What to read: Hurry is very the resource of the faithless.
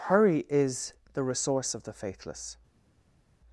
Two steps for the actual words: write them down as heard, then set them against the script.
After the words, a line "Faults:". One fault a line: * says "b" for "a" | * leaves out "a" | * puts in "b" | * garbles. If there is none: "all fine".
Hurry is the resource of the faithless.
Faults:
* leaves out "very"